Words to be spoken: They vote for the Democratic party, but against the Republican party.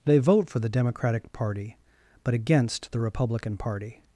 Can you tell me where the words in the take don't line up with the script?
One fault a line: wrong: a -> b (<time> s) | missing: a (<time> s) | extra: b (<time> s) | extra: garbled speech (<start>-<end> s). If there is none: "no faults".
no faults